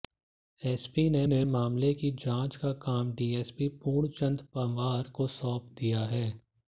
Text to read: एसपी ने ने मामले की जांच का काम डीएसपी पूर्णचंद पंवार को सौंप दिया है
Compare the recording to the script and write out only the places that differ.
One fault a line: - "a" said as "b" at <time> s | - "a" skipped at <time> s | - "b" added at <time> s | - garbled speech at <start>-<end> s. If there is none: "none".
none